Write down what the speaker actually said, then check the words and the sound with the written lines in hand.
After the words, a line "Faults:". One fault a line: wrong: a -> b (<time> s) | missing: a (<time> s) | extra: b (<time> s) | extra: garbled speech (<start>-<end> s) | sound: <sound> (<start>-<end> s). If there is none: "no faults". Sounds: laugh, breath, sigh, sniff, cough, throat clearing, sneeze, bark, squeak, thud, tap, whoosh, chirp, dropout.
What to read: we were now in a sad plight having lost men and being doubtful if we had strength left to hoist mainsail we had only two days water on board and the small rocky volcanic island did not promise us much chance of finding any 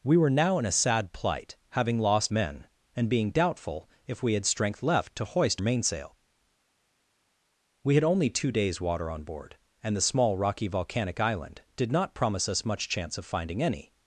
we were now in a sad plight having lost men and being doubtful if we had strength left to hoist mainsail we had only two days water on board and the small rocky volcanic island did not promise us much chance of finding any
Faults:
no faults